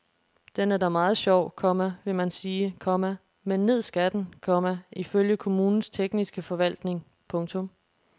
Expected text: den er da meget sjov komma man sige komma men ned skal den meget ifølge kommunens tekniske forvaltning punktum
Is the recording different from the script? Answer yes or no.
yes